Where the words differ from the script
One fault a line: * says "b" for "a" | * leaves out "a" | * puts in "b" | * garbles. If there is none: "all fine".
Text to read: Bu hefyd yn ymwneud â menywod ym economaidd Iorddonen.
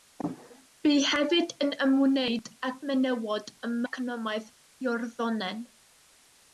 all fine